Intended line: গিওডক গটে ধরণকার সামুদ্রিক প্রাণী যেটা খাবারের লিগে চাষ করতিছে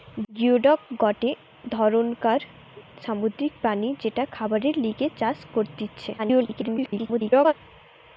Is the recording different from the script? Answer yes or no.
yes